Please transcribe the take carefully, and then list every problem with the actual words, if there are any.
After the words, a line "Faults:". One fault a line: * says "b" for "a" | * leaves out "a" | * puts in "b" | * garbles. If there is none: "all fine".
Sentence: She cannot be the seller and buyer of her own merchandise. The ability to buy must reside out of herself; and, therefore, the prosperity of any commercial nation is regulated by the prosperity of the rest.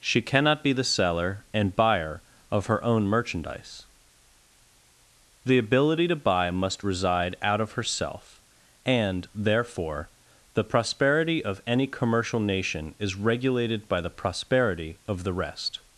She cannot be the seller and buyer of her own merchandise. The ability to buy must reside out of herself; and, therefore, the prosperity of any commercial nation is regulated by the prosperity of the rest.
Faults:
all fine